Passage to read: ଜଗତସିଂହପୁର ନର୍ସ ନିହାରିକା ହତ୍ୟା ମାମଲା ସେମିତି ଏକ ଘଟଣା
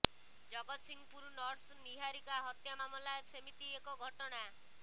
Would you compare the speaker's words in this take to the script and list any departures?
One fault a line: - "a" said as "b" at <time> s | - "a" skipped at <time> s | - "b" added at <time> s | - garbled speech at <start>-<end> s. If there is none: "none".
none